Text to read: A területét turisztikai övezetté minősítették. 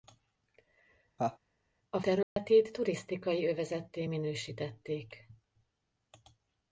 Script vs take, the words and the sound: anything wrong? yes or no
yes